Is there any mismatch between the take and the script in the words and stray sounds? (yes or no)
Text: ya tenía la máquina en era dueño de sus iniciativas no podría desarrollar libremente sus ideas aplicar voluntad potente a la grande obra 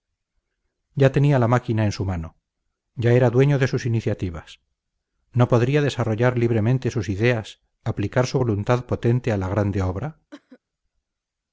yes